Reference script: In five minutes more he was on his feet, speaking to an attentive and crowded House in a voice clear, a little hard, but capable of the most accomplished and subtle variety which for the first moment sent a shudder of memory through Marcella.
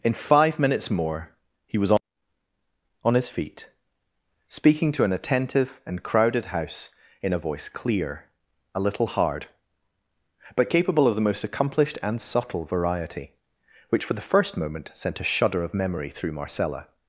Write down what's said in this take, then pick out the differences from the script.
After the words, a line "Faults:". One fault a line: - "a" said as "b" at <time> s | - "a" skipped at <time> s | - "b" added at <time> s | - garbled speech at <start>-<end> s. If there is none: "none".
In five minutes more he was on on his feet, speaking to an attentive and crowded House in a voice clear, a little hard, but capable of the most accomplished and subtle variety which for the first moment sent a shudder of memory through Marcella.
Faults:
- "on" added at 3.0 s